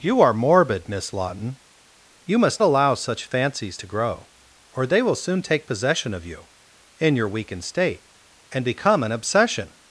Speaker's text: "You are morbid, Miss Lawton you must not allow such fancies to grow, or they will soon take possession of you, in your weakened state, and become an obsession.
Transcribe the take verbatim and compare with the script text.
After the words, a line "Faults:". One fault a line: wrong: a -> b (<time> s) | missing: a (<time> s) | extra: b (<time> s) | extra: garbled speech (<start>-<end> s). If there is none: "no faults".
"You are morbid, Miss Lawton you must allow such fancies to grow, or they will soon take possession of you, in your weakened state, and become an obsession.
Faults:
missing: not (2.6 s)